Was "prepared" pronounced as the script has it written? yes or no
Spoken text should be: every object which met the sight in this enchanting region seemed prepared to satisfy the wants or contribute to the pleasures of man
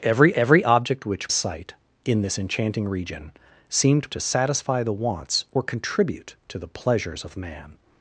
no